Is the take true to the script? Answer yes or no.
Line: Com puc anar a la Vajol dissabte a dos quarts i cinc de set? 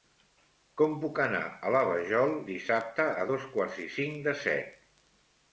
yes